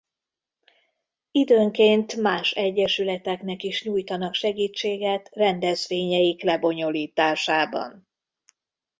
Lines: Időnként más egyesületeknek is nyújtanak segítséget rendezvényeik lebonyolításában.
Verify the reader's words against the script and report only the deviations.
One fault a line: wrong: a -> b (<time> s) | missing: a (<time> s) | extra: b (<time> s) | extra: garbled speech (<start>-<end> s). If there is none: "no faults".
no faults